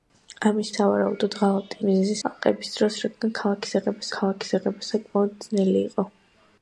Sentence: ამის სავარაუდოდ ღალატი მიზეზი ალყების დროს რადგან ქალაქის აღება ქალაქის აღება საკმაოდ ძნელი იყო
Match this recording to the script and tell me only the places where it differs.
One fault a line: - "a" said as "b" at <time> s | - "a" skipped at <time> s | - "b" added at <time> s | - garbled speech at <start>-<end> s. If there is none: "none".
none